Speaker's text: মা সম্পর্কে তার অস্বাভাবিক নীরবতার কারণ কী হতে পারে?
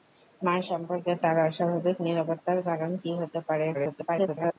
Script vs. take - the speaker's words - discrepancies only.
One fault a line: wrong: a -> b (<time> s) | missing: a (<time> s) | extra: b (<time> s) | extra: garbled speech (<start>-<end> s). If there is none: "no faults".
extra: garbled speech (3.7-4.6 s)